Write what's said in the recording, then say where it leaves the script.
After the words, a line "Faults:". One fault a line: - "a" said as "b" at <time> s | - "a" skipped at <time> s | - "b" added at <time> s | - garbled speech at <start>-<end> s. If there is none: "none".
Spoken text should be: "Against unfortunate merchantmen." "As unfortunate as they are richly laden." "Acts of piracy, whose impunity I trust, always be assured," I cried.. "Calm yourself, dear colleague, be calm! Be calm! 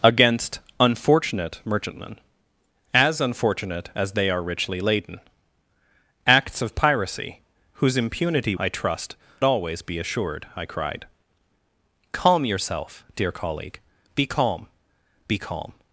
"Against unfortunate merchantmen." "As unfortunate as they are richly laden." "Acts of piracy, whose impunity I trust, always be assured," I cried.. "Calm yourself, dear colleague, be calm! Be calm!
Faults:
none